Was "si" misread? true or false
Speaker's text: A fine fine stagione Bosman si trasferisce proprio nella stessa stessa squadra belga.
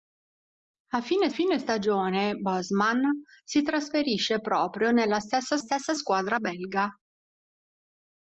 false